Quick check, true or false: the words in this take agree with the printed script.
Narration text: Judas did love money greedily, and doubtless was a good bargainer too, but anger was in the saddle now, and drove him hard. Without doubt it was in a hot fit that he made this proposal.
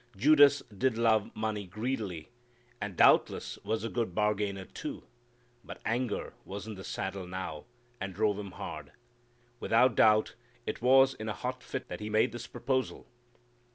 true